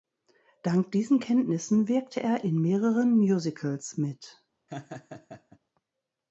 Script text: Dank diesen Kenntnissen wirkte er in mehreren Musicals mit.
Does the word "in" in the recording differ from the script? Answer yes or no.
no